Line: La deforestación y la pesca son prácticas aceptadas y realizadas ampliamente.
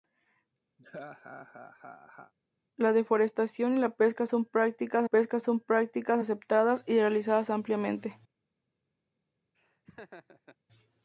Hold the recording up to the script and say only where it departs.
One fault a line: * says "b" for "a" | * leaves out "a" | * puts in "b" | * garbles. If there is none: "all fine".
* puts in "pesca son prácticas"